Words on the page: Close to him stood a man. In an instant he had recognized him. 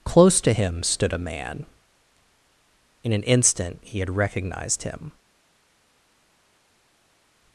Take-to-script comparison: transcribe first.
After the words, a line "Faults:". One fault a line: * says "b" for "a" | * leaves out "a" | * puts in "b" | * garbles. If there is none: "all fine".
Close to him stood a man. In an instant he had recognized him.
Faults:
all fine